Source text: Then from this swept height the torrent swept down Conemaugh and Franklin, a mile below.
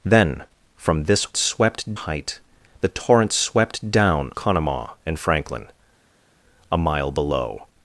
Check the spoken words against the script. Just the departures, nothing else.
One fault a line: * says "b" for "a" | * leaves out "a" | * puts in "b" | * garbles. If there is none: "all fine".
all fine